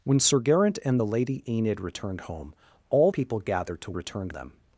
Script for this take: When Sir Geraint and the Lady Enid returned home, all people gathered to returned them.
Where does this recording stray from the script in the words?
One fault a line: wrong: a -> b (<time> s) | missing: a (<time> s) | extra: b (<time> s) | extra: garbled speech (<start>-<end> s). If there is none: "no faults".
no faults